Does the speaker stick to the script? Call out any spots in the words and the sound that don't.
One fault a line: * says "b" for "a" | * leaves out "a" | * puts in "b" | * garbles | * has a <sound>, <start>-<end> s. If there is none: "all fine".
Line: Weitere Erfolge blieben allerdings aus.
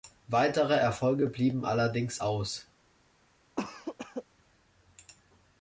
* has a cough, 3.6-4.2 s